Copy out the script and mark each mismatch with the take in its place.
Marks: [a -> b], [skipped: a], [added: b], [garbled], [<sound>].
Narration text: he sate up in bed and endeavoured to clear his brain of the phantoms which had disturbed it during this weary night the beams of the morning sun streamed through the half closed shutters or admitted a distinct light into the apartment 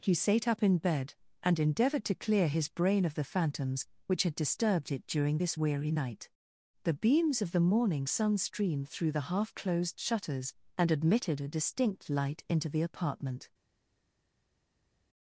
he sate up in bed and endeavoured to clear his brain of the phantoms which had disturbed it during this weary night the beams of the morning sun streamed through the half closed shutters [or -> and] admitted a distinct light into the apartment